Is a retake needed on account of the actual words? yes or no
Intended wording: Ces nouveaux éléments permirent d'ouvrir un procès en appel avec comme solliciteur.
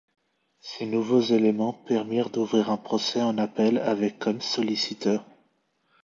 no